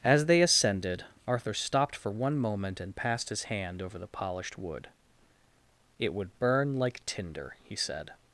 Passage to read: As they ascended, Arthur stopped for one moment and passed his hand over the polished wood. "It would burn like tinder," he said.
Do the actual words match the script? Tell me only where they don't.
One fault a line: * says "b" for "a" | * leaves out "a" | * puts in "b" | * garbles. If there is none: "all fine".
all fine